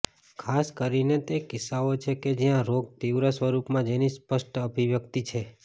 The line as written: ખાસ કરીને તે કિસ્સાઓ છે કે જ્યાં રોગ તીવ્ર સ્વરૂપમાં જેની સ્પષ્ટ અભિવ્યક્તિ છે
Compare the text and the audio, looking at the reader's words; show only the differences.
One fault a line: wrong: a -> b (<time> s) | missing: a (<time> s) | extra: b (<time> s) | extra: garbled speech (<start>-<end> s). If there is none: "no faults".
no faults